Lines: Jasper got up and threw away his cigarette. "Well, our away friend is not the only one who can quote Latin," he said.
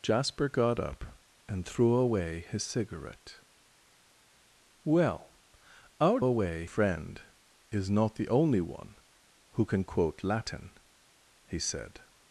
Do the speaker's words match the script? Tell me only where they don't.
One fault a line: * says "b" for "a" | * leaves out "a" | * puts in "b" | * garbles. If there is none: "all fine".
all fine